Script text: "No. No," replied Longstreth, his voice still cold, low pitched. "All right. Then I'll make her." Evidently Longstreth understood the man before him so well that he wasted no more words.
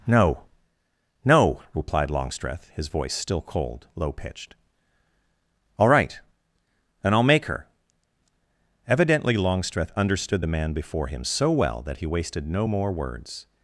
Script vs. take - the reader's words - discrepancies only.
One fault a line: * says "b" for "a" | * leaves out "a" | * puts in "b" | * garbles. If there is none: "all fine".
* says "And" for "Then"